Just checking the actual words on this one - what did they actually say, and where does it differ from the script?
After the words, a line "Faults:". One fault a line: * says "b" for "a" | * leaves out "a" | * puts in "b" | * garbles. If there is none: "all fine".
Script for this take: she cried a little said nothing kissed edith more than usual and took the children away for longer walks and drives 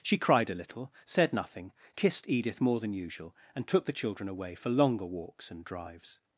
she cried a little said nothing kissed edith more than usual and took the children away for longer walks and drives
Faults:
all fine